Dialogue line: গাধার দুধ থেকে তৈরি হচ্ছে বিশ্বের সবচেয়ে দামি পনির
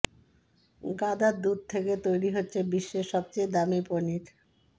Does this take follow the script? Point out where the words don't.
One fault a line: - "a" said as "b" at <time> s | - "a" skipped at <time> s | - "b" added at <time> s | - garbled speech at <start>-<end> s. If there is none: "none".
none